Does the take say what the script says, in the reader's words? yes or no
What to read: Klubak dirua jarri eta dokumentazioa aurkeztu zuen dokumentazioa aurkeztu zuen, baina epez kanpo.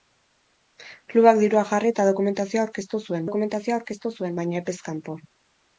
yes